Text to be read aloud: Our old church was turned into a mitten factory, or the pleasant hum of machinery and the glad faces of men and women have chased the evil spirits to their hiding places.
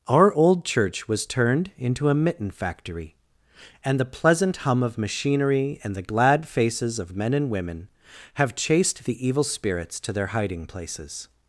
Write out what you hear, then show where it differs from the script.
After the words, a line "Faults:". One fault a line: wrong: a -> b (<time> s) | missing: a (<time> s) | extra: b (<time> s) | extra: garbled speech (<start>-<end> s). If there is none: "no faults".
Our old church was turned into a mitten factory, and the pleasant hum of machinery and the glad faces of men and women have chased the evil spirits to their hiding places.
Faults:
wrong: or -> and (3.8 s)